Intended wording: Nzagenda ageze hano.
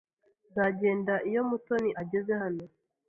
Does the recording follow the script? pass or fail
fail